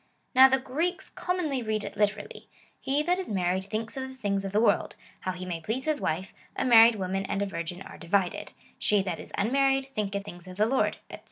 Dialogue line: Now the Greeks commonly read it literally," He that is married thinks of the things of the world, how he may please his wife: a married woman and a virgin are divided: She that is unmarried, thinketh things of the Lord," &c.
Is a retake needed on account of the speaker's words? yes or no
no